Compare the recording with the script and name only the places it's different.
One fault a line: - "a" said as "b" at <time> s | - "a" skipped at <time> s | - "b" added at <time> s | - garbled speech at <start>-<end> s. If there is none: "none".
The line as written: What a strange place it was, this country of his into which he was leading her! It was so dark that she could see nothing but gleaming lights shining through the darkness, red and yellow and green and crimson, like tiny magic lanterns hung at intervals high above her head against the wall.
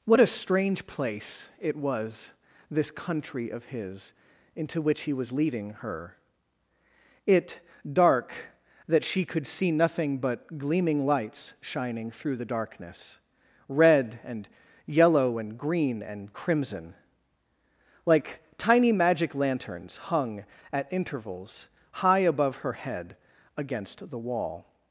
- "was so" skipped at 7.6 s